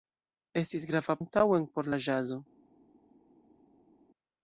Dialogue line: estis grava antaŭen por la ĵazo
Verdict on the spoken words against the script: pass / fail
pass